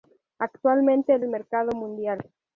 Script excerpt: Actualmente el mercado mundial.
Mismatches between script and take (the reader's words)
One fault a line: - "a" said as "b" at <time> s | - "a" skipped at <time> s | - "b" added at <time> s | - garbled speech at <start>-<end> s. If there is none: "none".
none